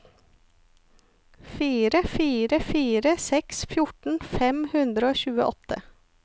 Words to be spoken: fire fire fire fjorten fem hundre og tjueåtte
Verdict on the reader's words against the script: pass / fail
fail